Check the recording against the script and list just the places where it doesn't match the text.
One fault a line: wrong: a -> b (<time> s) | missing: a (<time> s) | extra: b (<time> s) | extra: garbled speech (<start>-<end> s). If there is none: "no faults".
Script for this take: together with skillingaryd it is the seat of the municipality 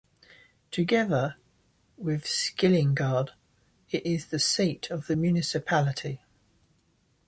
no faults